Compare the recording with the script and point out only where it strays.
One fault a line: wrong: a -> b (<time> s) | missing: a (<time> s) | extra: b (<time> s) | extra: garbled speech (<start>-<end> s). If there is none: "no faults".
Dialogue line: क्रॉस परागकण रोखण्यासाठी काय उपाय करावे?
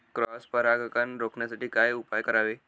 no faults